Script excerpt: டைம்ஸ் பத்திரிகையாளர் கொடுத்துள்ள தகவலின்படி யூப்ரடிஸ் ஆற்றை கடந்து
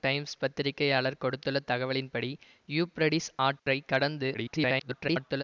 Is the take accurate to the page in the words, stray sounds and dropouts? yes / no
no